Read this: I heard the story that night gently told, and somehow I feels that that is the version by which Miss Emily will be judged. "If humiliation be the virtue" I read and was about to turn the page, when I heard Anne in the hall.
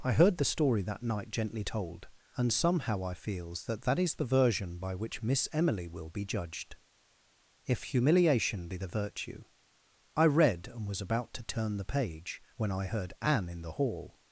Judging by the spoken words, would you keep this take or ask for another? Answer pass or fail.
pass